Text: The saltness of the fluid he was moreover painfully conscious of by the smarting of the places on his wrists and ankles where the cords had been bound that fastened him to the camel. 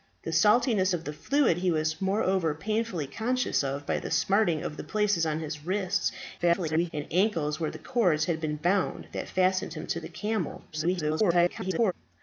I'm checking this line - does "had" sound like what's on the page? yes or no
yes